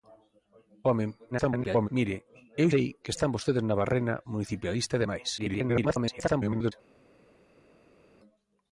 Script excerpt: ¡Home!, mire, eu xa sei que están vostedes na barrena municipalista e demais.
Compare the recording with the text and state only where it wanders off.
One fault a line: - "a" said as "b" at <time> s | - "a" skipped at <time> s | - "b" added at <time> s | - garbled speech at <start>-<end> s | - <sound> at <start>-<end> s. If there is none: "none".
- garbled speech at 1.3-1.9 s
- "xa" skipped at 2.7 s
- garbled speech at 5.4-6.7 s